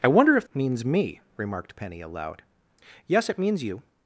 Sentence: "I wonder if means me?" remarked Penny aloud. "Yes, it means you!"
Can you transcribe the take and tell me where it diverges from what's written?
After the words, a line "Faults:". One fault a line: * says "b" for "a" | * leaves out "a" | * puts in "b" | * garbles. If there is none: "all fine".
"I wonder if means me?" remarked Penny aloud. "Yes, it means you!"
Faults:
all fine